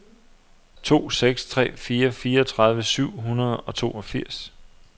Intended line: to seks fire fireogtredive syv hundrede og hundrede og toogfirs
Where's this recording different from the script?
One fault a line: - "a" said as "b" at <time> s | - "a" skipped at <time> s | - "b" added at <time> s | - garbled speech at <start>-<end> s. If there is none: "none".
- "tre" added at 1.4 s
- "hundrede og" skipped at 3.8 s